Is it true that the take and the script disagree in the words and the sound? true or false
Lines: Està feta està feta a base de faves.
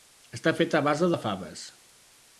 true